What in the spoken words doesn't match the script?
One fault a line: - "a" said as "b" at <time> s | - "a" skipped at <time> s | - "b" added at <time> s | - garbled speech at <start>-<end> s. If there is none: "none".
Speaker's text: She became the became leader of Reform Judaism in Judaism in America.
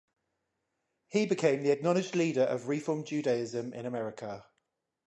- "She" said as "He" at 1.1 s
- "became" said as "acknowledged" at 1.7 s
- "Judaism in" skipped at 3.9 s